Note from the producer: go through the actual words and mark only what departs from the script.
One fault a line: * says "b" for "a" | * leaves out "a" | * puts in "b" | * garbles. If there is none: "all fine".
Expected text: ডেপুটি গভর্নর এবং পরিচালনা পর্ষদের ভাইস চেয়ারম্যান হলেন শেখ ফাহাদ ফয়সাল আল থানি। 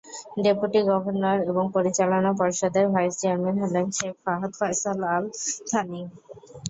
all fine